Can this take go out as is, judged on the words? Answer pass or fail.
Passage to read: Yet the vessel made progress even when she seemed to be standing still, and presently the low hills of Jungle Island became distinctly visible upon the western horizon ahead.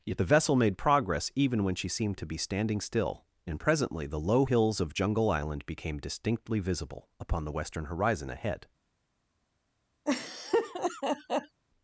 pass